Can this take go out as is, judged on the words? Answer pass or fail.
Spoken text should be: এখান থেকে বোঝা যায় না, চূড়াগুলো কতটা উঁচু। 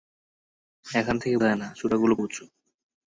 fail